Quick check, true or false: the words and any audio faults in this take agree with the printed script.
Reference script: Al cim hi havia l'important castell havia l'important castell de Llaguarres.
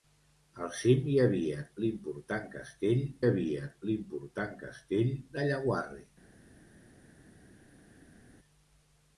true